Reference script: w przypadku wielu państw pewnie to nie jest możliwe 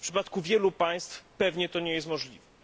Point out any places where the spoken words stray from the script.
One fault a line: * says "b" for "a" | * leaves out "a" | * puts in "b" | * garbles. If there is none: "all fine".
all fine